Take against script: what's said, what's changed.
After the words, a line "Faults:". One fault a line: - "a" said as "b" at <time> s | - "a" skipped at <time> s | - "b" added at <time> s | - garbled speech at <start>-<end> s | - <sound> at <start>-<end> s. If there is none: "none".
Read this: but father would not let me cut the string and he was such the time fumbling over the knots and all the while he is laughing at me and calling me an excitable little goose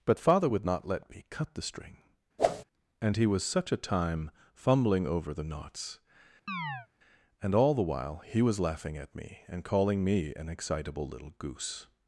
but father would not let me cut the string and he was such a time fumbling over the knots and all the while he was laughing at me and calling me an excitable little goose
Faults:
- whoosh at 2.4-2.6 s
- "the" said as "a" at 3.7 s
- chirp at 6.5-6.9 s
- "is" said as "was" at 8.4 s